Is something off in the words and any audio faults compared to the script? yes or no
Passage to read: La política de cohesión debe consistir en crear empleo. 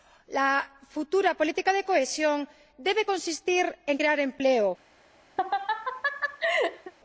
yes